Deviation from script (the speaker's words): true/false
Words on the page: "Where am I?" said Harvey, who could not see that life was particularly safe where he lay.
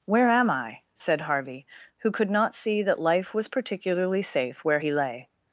false